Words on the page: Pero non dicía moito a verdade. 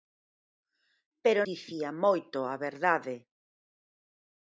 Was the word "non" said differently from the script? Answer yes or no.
yes